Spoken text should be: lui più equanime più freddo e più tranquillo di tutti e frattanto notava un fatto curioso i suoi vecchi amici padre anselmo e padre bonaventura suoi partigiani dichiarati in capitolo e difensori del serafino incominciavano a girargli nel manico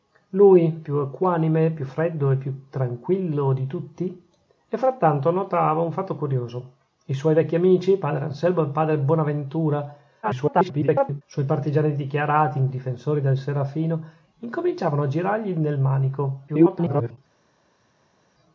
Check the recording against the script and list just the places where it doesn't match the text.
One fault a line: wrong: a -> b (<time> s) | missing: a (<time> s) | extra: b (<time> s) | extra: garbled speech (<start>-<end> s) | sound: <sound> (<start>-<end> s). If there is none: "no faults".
extra: garbled speech (10.2-11.2 s)
missing: capitolo (12.7 s)
extra: garbled speech (16.5-17.2 s)